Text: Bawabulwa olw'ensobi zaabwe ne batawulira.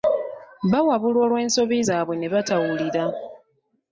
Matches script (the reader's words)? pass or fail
pass